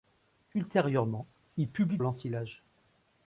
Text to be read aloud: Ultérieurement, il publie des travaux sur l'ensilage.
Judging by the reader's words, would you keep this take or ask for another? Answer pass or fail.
fail